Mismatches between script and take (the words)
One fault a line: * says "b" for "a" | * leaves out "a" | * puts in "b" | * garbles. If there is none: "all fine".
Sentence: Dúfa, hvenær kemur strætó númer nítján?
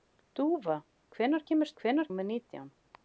* says "hvenær" for "strætó"